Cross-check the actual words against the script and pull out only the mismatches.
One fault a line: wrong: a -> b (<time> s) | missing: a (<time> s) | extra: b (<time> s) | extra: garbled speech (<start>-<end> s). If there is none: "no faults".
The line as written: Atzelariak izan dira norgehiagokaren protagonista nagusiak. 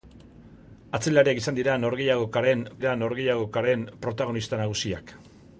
extra: dira norgehiagokaren (2.8 s)